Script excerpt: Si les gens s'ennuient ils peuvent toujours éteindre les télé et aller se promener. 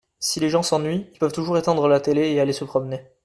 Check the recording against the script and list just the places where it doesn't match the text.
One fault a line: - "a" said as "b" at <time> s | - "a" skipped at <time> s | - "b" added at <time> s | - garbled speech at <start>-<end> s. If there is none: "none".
- "les" said as "la" at 1.9 s